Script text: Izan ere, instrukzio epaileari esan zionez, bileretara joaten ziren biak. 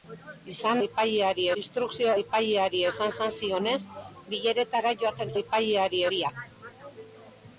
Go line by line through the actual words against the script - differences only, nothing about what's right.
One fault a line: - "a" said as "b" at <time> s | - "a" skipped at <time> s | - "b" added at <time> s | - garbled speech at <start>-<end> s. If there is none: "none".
- "ere" said as "epaileari" at 0.9 s
- "esan" added at 3.1 s
- "ziren" said as "epaileari" at 5.4 s